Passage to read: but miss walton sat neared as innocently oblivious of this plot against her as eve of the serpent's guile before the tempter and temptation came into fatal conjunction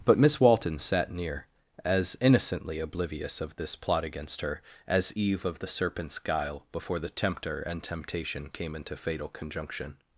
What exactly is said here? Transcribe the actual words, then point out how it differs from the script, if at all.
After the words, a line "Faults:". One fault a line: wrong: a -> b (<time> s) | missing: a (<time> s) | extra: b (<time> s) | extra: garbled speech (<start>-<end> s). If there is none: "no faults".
but miss walton sat near as innocently oblivious of this plot against her as eve of the serpent's guile before the tempter and temptation came into fatal conjunction
Faults:
wrong: neared -> near (1.1 s)